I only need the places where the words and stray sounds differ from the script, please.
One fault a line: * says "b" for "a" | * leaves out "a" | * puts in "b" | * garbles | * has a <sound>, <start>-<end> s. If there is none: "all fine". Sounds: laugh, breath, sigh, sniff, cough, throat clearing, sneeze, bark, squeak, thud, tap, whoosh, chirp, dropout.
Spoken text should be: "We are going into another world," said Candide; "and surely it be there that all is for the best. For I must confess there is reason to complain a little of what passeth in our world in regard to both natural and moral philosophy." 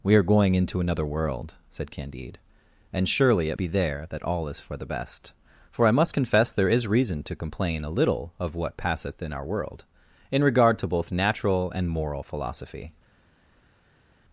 all fine